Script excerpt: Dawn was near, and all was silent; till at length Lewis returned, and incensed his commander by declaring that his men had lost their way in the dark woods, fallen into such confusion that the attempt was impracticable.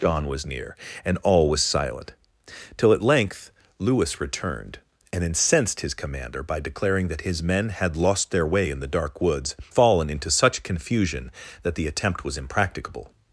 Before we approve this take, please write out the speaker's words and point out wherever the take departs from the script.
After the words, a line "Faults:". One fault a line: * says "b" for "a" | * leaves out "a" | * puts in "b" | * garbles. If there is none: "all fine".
Dawn was near, and all was silent; till at length Lewis returned, and incensed his commander by declaring that his men had lost their way in the dark woods, fallen into such confusion that the attempt was impracticable.
Faults:
all fine